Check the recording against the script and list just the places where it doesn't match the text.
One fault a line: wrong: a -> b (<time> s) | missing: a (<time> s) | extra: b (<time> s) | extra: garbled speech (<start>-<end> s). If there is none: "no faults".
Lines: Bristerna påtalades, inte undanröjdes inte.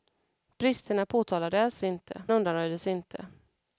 no faults